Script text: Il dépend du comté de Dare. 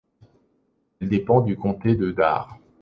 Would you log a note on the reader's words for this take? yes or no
yes